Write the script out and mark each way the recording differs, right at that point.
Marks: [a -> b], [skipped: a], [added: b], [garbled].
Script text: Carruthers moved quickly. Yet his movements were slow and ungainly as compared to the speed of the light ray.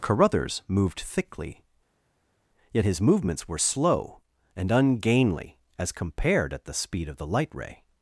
Carruthers moved [quickly. -> thickly] Yet his movements were slow and ungainly as compared [to -> at] the speed of the light ray.